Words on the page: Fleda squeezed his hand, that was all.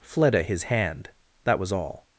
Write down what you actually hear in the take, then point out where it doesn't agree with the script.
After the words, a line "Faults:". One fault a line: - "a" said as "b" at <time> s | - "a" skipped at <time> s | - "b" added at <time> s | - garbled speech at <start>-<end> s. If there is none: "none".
Fleda his hand, that was all.
Faults:
- "squeezed" skipped at 0.4 s